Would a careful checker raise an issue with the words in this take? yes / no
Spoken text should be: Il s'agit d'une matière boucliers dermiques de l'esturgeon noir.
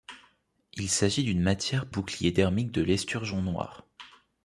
no